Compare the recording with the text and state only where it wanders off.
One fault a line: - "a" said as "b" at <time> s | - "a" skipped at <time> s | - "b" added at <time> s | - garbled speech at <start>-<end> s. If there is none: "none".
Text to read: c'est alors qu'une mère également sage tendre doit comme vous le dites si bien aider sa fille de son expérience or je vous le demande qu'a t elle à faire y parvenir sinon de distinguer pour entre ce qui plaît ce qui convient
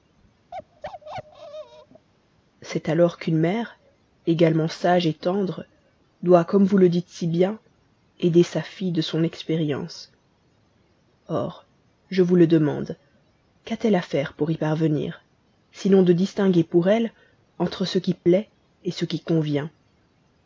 - "pour" added at 14.3 s
- "elle" added at 16.9 s